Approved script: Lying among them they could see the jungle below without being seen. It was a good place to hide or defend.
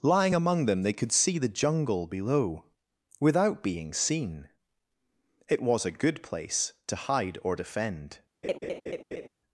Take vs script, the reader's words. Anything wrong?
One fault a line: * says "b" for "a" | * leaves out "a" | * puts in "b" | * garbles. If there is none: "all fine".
all fine